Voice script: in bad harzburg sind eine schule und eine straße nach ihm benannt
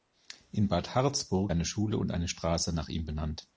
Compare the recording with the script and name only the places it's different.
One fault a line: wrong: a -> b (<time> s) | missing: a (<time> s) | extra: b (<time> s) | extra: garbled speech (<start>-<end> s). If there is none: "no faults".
missing: sind (1.5 s)